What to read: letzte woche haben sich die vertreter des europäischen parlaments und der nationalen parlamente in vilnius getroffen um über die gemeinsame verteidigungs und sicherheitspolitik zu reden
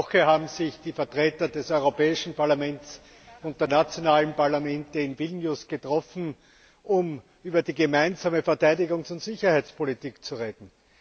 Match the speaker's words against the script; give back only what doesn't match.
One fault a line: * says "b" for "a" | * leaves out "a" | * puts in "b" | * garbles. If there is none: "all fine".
all fine